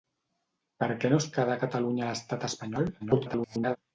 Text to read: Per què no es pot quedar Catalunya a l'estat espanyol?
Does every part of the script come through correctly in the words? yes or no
no